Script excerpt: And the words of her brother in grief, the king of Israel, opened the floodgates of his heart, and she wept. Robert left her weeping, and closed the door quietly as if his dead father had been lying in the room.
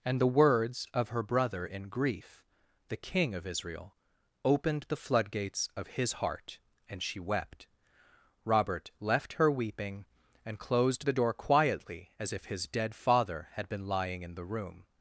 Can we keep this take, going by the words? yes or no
yes